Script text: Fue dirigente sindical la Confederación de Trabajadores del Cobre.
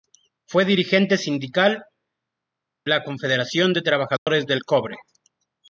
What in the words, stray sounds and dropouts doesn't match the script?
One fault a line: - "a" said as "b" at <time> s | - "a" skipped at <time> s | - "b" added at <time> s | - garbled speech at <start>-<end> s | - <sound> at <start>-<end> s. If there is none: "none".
- dropout at 4.2-4.3 s